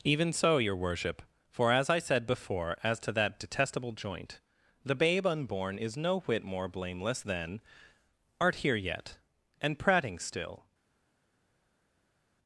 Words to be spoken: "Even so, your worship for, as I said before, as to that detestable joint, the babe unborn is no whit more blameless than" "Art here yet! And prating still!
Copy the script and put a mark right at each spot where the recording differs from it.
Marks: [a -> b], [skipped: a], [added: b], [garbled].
"Even so, your worship for, as I said before, as to that detestable joint, the babe unborn is no whit more blameless than" "Art here yet! And prating still!